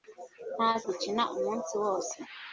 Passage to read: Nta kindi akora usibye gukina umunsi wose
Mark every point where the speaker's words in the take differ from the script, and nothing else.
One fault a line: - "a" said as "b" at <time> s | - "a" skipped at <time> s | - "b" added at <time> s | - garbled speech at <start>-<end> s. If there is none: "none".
- "kindi akora usibye" skipped at 0.7 s